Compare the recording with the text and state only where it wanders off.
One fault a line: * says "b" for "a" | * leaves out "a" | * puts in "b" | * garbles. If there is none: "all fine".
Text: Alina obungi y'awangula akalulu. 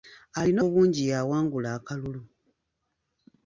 all fine